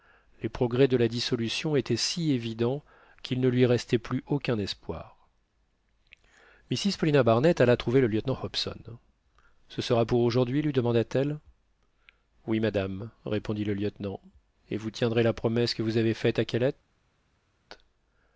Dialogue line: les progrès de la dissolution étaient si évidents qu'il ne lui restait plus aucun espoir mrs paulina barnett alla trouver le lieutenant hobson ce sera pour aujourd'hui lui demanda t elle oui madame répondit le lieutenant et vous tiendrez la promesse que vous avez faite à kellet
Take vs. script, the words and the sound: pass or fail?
pass